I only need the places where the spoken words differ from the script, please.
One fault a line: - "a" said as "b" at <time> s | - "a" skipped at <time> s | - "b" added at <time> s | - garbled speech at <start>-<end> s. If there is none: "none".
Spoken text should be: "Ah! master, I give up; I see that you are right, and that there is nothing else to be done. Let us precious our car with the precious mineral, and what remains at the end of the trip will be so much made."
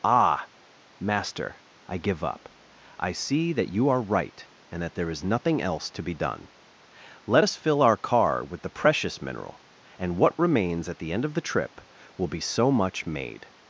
- "precious" said as "fill" at 7.6 s